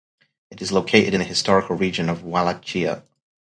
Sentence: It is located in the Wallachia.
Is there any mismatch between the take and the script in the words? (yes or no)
yes